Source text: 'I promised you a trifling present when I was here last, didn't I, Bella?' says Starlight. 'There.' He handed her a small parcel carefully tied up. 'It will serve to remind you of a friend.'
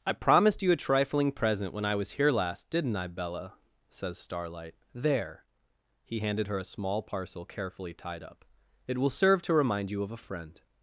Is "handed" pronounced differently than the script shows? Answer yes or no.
no